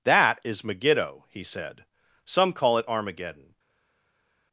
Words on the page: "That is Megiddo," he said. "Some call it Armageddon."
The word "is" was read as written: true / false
true